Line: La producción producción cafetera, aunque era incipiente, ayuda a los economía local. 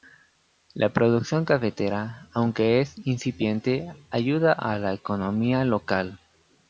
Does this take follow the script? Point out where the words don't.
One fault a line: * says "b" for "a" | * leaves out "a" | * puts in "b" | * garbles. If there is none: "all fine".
* leaves out "producción"
* says "es" for "era"
* says "la" for "los"